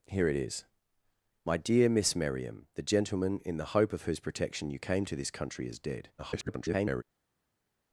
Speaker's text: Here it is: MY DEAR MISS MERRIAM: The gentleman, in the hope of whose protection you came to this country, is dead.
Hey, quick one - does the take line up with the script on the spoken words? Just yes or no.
no